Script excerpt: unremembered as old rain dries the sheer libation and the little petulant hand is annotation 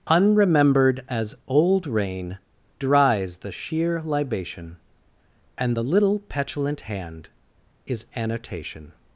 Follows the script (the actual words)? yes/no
yes